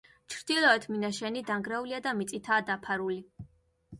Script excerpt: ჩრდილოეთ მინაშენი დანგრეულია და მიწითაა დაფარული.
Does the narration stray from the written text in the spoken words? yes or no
no